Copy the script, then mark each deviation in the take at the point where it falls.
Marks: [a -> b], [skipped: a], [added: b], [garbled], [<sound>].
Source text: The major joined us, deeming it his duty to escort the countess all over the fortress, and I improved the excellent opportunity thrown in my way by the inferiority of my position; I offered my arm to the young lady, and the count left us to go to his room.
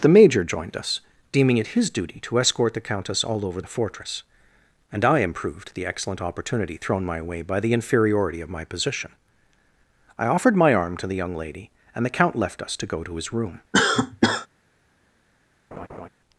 The major joined us, deeming it his duty to escort the countess all over the fortress, and I improved the excellent opportunity thrown [skipped: in] my way by the inferiority of my position; I offered my arm to the young lady, and the count left us to go to his room. [cough] [laugh]